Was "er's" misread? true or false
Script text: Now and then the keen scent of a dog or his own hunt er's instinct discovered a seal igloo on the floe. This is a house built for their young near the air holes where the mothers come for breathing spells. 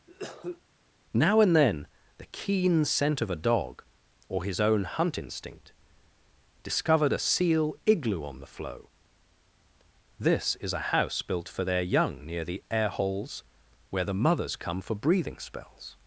true